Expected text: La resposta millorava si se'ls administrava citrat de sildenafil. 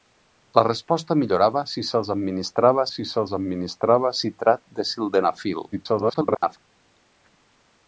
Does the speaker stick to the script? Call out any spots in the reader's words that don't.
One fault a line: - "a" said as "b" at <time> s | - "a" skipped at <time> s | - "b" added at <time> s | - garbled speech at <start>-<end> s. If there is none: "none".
- "si se'ls administrava" added at 2.9 s
- garbled speech at 5.7-6.6 s